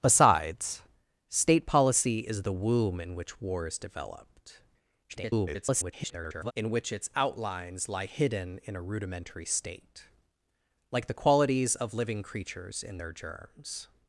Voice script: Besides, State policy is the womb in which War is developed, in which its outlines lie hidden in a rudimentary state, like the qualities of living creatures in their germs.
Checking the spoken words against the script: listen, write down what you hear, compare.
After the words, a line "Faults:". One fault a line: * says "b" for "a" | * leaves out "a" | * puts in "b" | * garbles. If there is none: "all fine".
Besides, State policy is the womb in which War is developed, [garbled] in which its outlines lie hidden in a rudimentary state, like the qualities of living creatures in their germs.
Faults:
* garbles